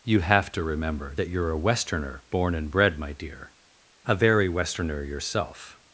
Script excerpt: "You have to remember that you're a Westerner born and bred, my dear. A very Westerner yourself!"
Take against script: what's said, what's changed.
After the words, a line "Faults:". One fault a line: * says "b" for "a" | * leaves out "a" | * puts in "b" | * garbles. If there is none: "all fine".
"You have to remember that you're a Westerner born and bred, my dear. A very Westerner yourself!"
Faults:
all fine